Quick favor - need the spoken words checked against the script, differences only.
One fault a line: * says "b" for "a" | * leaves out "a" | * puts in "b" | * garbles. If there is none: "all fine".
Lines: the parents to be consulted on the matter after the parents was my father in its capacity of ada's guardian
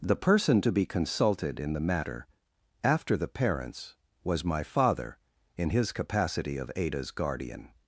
* says "person" for "parents"
* says "in" for "on"
* says "his" for "its"